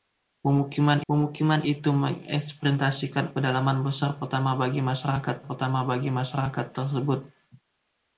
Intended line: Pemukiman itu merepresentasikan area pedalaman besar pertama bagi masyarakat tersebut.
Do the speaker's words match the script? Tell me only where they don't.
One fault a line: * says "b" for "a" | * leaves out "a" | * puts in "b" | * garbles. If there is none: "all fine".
* puts in "pemukiman"
* leaves out "area"
* puts in "pertama bagi masyarakat"